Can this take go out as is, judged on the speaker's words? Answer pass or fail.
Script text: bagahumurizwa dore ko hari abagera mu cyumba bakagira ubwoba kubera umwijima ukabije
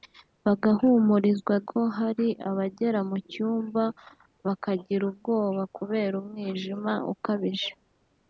fail